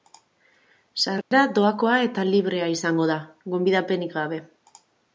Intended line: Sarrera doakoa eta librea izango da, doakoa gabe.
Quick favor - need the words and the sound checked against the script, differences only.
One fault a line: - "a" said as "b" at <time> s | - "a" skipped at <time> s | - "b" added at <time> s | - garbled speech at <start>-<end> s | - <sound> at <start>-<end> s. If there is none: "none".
- dropout at 1.2-1.3 s
- "doakoa" said as "gonbidapenik" at 3.5 s